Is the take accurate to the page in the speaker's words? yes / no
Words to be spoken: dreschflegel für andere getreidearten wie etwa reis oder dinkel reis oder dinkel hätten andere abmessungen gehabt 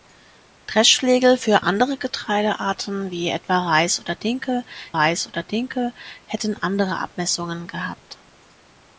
yes